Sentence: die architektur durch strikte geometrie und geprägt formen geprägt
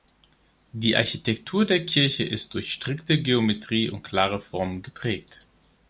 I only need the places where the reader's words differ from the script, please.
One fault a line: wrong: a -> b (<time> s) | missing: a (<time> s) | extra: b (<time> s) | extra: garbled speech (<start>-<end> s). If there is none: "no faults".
extra: der kirche ist (1.6 s)
wrong: geprägt -> klare (4.0 s)